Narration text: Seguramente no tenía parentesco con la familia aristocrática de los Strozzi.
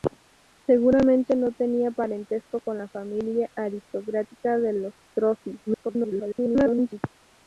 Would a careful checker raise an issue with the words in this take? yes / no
yes